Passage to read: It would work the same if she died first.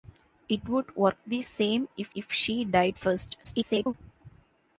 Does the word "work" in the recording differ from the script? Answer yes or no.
no